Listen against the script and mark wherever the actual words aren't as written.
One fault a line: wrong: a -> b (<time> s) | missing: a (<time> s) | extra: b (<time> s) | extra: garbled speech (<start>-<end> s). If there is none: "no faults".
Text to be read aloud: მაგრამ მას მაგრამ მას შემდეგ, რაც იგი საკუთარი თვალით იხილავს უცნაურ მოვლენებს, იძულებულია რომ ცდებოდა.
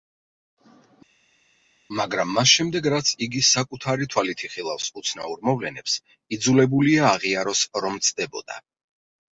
missing: მაგრამ მას (2.5 s)
extra: აღიაროს (7.1 s)